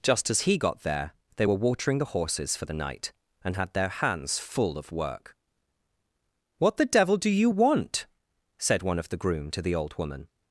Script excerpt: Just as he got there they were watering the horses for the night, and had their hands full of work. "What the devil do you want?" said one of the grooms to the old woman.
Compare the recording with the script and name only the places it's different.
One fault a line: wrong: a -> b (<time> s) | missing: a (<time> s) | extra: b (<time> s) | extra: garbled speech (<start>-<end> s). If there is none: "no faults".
wrong: grooms -> groom (9.2 s)